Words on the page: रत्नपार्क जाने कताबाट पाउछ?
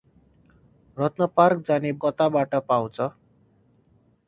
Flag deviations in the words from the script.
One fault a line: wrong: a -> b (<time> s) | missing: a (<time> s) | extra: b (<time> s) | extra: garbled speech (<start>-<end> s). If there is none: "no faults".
no faults